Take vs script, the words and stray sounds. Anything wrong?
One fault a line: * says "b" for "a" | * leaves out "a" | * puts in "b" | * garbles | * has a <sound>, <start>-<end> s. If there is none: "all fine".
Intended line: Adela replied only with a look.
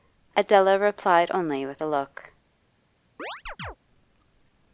* has a chirp, 3.2-3.8 s